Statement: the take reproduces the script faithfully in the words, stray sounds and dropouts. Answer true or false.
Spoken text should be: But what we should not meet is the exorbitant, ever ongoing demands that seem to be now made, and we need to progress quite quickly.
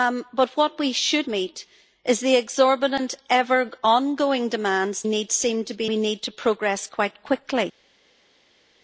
false